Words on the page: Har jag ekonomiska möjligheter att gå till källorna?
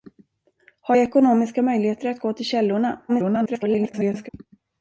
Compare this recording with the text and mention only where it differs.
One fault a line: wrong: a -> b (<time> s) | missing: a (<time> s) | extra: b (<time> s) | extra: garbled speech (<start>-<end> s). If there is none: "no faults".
extra: garbled speech (3.1-4.3 s)